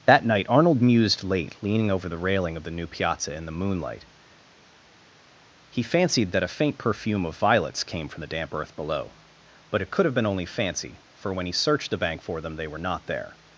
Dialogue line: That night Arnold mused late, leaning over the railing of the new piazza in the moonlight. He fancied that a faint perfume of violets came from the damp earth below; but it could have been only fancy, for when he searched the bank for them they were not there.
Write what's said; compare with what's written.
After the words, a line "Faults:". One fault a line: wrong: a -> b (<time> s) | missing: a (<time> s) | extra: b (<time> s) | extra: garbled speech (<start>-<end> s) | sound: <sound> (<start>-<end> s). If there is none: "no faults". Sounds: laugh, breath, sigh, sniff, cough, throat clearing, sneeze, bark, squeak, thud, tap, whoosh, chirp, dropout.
That night Arnold mused late, leaning over the railing of the new piazza in the moonlight. He fancied that a faint perfume of violets came from the damp earth below; but it could have been only fancy, for when he searched the bank for them they were not there.
Faults:
no faults